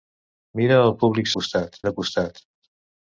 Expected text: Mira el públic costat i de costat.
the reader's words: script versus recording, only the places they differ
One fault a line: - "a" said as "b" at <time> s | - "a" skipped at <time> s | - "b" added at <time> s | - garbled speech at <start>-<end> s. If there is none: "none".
none